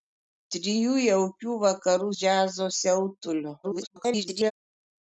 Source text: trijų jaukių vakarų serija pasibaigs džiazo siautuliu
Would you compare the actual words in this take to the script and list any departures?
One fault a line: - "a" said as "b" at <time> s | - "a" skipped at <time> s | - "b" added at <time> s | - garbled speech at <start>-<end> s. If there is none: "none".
- "serija pasibaigs" skipped at 2.1 s
- garbled speech at 3.6-4.5 s